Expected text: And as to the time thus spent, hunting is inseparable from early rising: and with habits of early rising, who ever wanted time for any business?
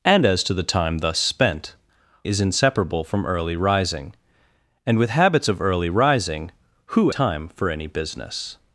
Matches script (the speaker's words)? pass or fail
fail